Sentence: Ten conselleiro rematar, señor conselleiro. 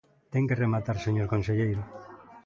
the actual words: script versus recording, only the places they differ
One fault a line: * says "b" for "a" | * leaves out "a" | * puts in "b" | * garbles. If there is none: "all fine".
* says "que" for "conselleiro"